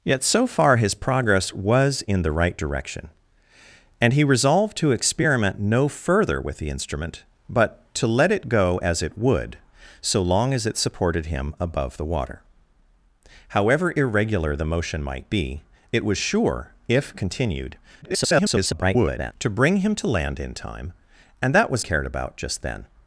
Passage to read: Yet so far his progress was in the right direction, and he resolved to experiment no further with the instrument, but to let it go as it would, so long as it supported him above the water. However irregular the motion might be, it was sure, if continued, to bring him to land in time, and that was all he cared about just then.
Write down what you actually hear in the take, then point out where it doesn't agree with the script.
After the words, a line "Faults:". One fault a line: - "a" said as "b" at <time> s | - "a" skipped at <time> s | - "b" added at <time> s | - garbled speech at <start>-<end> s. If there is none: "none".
Yet so far his progress was in the right direction, and he resolved to experiment no further with the instrument, but to let it go as it would, so long as it supported him above the water. However irregular the motion might be, it was sure, if continued, [garbled] to bring him to land in time, and that was cared about just then.
Faults:
- garbled speech at 18.0-19.3 s
- "all he" skipped at 21.8 s